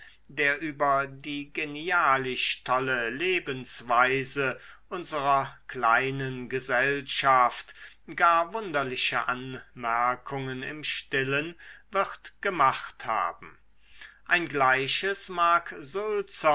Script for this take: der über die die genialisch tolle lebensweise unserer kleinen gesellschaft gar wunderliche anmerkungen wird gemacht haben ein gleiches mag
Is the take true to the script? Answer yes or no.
no